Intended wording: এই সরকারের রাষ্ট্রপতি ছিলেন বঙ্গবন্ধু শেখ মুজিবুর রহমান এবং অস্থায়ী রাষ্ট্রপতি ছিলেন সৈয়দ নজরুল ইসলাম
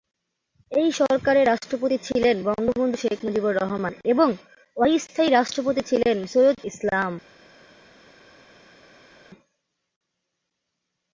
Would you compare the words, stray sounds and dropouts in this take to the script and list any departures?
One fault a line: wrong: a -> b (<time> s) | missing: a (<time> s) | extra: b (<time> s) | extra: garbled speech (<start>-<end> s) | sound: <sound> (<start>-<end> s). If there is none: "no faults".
missing: নজরুল (6.6 s)